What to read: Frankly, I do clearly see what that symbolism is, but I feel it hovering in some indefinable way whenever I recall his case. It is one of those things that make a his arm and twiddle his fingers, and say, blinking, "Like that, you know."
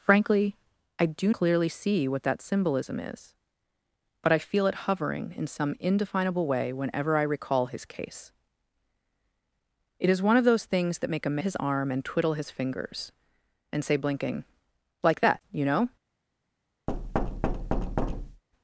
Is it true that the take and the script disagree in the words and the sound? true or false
true